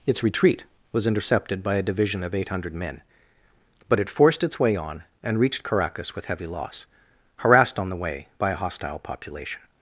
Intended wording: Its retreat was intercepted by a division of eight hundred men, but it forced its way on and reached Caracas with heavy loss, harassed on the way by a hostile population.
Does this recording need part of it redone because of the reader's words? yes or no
no